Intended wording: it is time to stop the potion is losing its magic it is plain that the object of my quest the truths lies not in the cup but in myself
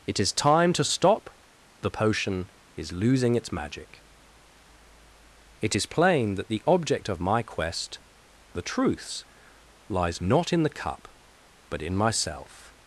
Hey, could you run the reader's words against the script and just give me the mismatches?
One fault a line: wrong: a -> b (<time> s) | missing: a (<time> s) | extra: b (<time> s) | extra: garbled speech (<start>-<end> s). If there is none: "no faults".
no faults